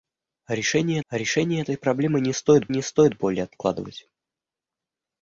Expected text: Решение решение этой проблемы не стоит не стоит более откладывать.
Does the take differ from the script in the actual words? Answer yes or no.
no